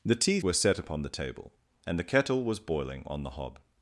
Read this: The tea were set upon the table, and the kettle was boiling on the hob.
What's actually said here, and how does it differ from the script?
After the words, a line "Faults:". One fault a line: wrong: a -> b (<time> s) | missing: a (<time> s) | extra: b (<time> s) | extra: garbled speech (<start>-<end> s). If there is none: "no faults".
The tea were set upon the table, and the kettle was boiling on the hob.
Faults:
no faults